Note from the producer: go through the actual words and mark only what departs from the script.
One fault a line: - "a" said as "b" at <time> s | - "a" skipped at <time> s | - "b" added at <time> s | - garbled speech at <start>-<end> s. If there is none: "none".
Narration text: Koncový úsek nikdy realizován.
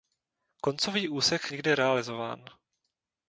none